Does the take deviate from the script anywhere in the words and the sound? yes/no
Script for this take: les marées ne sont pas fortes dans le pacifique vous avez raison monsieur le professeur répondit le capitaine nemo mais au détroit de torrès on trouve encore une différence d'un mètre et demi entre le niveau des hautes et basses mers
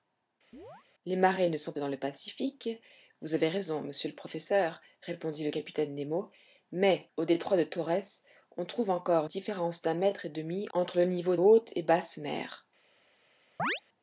yes